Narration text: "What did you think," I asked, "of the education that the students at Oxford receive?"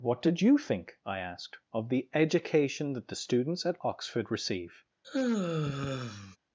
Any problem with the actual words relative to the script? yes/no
no